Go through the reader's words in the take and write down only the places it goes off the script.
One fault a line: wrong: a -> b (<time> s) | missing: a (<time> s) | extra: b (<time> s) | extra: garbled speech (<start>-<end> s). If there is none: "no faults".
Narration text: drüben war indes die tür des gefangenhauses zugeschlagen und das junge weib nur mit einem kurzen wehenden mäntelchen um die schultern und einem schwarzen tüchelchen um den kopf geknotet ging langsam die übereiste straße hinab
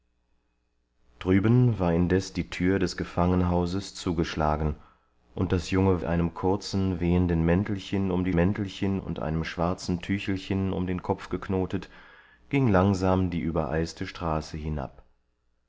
missing: weib nur mit (6.0 s)
wrong: schultern -> mäntelchen (8.4 s)